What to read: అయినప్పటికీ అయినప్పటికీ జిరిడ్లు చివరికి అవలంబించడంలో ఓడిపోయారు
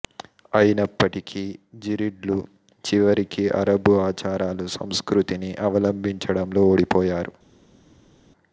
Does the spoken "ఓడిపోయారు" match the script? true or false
true